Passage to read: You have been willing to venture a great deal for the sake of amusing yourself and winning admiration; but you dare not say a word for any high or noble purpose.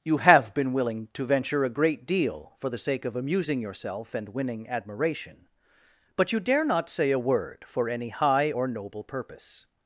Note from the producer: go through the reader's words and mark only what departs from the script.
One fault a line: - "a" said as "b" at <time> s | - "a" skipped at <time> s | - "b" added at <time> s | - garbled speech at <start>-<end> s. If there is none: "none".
none